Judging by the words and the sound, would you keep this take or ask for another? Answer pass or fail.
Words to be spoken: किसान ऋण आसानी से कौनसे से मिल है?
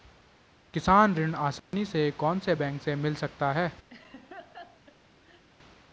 fail